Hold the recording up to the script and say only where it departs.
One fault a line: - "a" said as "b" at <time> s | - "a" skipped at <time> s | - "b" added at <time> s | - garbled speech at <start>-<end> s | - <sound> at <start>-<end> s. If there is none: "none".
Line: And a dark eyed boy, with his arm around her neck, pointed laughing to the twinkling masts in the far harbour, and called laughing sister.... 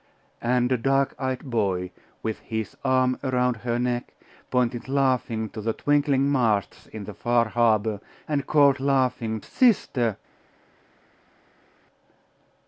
none